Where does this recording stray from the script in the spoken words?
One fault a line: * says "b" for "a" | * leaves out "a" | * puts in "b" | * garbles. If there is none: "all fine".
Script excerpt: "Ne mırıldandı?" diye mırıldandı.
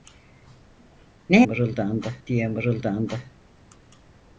all fine